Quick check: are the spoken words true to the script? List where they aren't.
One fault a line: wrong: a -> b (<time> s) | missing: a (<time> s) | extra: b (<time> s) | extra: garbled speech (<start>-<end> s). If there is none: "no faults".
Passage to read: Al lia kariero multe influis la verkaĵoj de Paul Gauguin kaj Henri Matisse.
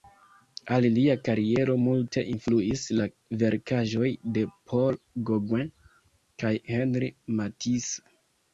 no faults